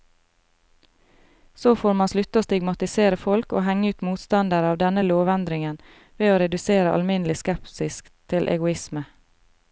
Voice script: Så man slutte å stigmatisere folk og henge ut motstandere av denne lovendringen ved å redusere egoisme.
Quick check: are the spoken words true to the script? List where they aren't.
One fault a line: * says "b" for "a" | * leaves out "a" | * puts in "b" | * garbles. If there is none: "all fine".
* puts in "får"
* puts in "alminnelig skepsis til"